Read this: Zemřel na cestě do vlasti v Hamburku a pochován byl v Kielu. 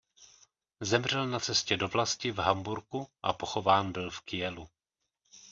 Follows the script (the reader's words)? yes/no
yes